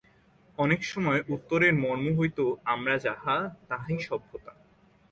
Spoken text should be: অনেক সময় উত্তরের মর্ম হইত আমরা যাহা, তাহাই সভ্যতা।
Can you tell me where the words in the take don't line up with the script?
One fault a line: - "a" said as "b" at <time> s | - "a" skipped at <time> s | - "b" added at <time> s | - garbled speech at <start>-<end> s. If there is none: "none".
none